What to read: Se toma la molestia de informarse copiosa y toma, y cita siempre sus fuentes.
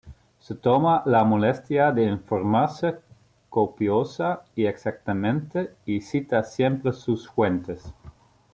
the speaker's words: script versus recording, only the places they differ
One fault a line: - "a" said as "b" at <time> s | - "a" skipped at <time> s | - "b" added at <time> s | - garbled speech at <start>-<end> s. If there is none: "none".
- "toma" said as "exactamente" at 4.7 s